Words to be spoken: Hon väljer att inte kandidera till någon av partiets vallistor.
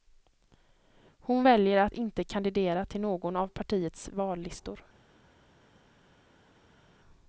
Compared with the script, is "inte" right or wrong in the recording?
right